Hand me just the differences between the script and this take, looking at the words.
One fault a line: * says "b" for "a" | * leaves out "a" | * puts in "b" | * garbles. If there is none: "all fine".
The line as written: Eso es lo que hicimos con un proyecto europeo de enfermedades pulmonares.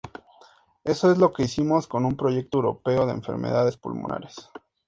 all fine